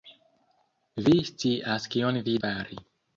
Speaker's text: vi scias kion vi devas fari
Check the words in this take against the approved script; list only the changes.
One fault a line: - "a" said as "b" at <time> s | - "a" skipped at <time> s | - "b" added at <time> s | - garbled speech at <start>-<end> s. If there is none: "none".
- "devas" skipped at 2.4 s